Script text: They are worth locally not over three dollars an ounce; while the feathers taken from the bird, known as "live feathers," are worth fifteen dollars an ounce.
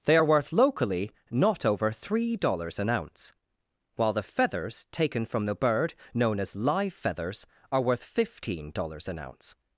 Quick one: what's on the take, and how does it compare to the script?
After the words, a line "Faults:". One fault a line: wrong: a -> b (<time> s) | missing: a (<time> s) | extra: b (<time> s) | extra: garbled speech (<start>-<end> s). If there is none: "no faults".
They are worth locally not over three dollars an ounce; while the feathers taken from the bird, known as "live feathers," are worth fifteen dollars an ounce.
Faults:
no faults